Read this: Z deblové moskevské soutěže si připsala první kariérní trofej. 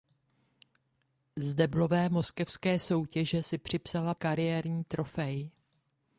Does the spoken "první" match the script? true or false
false